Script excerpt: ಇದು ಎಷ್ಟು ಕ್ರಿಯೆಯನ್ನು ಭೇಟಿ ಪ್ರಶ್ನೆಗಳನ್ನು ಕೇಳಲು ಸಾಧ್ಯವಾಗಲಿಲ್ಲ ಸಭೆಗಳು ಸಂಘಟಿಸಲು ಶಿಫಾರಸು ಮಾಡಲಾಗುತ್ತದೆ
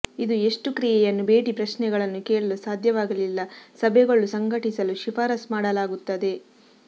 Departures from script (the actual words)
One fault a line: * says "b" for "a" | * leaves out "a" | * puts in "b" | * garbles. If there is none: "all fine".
all fine